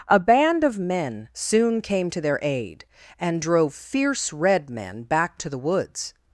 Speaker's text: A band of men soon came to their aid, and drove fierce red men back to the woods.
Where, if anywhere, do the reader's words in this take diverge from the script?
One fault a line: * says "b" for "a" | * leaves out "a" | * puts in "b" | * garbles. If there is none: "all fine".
all fine